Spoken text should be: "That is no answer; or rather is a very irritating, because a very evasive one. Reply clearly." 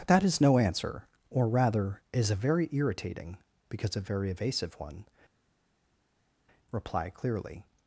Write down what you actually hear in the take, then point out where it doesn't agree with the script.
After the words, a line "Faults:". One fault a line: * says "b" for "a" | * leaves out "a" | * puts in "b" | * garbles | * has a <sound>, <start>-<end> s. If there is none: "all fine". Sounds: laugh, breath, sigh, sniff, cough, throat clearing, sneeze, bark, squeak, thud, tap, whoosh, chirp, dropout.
"That is no answer; or rather is a very irritating, because a very evasive one. Reply clearly."
Faults:
all fine